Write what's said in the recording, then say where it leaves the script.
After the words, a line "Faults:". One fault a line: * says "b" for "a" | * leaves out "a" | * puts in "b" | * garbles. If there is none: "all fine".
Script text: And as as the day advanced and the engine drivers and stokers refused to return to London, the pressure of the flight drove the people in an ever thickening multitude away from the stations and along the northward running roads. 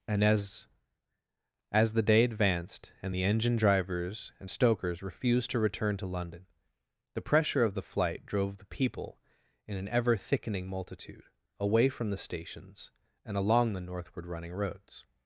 And as as the day advanced and the engine drivers and stokers refused to return to London, the pressure of the flight drove the people in an ever thickening multitude away from the stations and along the northward running roads.
Faults:
all fine